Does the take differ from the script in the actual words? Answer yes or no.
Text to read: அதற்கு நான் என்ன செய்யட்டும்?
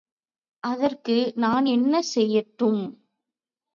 no